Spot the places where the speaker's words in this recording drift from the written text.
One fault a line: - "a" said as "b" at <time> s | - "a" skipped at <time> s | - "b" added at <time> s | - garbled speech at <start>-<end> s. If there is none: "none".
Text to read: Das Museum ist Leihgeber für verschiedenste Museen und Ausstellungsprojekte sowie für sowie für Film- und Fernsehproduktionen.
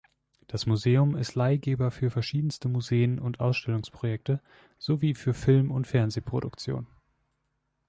- "sowie für" skipped at 5.3 s